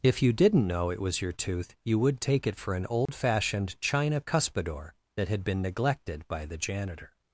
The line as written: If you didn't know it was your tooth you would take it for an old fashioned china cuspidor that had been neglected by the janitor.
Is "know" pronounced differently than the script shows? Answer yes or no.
no